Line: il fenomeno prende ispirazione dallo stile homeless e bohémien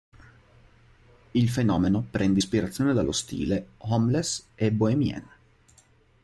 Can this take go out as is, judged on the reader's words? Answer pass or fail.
pass